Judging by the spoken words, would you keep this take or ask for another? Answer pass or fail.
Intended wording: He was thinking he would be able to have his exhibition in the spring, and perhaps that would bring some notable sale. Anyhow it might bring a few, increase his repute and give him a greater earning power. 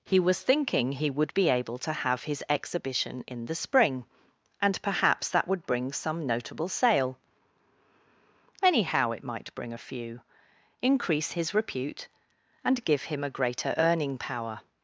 pass